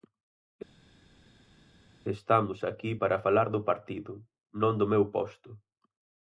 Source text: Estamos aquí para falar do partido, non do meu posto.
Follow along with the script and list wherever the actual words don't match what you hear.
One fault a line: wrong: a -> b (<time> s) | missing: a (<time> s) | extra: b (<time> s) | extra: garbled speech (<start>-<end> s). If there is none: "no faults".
no faults